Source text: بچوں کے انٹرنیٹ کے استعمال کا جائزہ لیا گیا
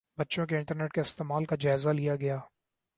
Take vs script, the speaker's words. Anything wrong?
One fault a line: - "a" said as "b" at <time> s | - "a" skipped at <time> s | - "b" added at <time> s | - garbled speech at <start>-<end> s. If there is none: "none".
none